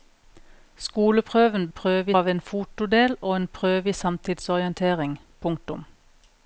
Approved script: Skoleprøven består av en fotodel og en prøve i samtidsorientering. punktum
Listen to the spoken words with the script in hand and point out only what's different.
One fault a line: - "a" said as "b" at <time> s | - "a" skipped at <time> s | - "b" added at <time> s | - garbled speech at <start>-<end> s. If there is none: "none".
- "består" said as "prøve" at 1.7 s